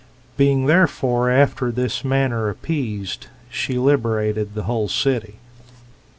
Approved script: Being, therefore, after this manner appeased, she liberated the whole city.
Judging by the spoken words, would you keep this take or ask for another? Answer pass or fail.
pass